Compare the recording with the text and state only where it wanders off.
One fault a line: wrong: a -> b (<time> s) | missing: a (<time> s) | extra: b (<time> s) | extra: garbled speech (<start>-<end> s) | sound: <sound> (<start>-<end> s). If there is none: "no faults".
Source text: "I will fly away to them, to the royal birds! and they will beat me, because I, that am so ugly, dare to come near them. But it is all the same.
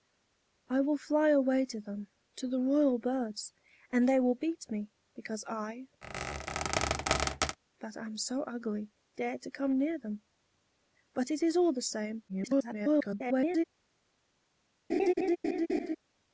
sound: squeak (6.0-7.6 s)
extra: garbled speech (12.3-13.6 s)
sound: laugh (14.9-16.0 s)